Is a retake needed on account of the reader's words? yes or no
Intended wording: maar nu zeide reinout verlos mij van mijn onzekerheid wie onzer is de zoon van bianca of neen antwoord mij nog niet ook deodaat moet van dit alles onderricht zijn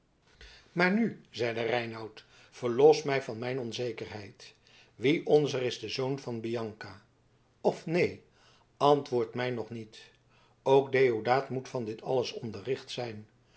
no